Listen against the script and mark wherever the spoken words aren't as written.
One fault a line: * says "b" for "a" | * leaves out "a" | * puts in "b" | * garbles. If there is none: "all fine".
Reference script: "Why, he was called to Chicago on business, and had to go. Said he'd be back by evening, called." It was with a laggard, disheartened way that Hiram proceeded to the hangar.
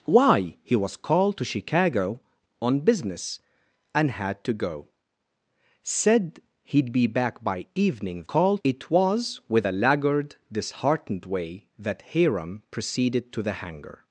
all fine